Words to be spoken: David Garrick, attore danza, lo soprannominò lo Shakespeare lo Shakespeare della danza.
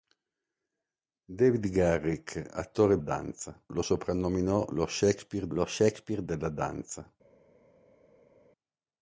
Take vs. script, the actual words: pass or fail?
pass